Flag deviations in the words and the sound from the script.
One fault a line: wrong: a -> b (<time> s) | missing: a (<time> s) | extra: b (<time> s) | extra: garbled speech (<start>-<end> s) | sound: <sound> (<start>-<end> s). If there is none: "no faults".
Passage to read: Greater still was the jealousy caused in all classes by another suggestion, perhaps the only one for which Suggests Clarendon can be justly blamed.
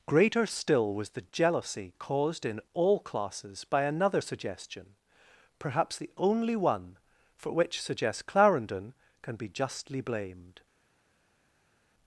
no faults